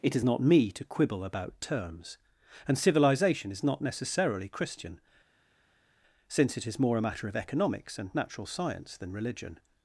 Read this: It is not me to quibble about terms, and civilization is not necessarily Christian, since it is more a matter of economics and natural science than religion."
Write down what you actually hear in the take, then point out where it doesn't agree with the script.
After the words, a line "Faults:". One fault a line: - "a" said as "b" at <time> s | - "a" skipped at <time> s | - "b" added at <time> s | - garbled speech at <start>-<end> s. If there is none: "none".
It is not me to quibble about terms, and civilization is not necessarily Christian, since it is more a matter of economics and natural science than religion."
Faults:
none